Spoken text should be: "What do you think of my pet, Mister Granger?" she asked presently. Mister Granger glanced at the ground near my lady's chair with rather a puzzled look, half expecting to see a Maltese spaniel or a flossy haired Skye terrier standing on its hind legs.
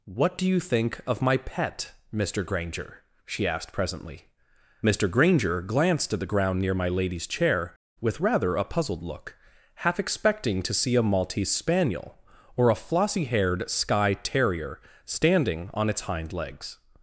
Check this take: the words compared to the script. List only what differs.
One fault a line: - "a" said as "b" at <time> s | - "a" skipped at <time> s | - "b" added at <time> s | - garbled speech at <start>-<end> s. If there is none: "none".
none